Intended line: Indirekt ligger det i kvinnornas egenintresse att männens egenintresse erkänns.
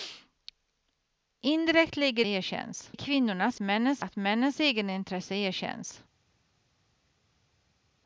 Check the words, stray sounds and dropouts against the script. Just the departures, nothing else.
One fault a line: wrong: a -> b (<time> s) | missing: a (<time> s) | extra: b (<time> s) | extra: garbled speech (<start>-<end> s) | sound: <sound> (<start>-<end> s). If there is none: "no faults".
wrong: det -> erkänns (2.2 s)
wrong: egenintresse -> männens (3.6 s)